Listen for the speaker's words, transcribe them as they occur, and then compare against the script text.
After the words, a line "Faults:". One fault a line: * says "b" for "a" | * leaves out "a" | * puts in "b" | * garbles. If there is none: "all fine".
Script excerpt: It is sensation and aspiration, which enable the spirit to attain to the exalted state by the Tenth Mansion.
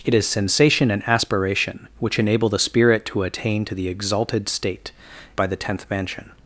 It is sensation and aspiration, which enable the spirit to attain to the exalted state by the Tenth Mansion.
Faults:
all fine